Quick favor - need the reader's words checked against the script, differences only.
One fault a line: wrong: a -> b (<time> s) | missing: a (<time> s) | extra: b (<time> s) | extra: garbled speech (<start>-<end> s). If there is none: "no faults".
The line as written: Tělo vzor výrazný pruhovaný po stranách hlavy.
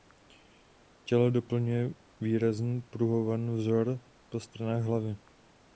wrong: vzor -> doplňuje (1.3 s)
extra: vzor (3.6 s)